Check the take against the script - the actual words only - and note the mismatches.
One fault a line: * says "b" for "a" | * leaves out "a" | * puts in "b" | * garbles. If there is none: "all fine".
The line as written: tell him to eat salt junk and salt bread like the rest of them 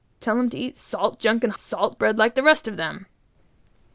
all fine